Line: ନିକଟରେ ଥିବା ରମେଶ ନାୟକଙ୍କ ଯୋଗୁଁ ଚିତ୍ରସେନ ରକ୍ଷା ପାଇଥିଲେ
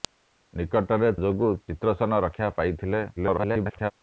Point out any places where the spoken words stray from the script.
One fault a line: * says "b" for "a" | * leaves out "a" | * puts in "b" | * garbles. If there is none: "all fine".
* leaves out "ଥିବା ରମେଶ ନାୟକଙ୍କ"
* garbles